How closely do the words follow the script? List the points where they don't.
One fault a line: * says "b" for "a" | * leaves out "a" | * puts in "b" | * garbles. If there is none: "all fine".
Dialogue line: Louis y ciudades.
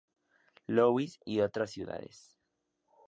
* puts in "otras"